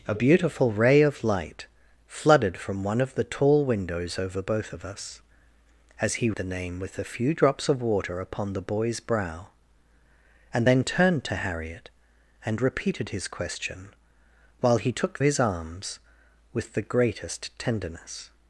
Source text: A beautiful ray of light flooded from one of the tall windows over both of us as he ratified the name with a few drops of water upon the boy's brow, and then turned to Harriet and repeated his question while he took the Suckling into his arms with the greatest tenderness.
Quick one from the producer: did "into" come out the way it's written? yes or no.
no